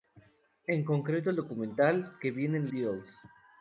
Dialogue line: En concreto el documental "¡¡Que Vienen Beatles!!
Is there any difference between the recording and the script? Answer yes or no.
no